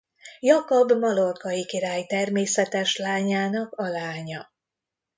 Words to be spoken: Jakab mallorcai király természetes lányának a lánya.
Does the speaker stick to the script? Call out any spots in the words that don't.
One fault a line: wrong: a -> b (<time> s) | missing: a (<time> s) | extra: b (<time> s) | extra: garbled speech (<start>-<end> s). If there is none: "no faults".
no faults